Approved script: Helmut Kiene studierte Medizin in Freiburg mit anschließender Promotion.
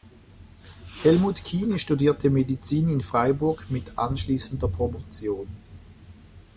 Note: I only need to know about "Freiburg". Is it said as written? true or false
true